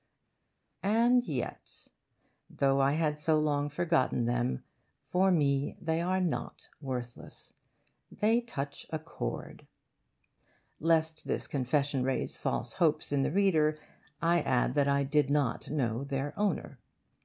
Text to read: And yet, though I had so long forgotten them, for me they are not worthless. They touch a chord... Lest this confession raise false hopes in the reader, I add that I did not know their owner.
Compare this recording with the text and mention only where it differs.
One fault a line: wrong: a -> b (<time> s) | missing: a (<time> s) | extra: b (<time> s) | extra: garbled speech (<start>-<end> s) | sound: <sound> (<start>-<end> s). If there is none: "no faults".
no faults